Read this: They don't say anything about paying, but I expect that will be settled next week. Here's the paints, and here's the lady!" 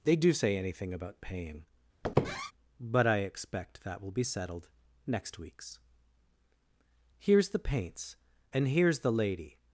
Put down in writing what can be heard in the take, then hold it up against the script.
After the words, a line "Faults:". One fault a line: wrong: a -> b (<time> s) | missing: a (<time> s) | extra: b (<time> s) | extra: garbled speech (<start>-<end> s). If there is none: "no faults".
They do say anything about paying, but I expect that will be settled next weeks. Here's the paints, and here's the lady!"
Faults:
wrong: don't -> do (0.1 s)
wrong: week -> weeks (5.4 s)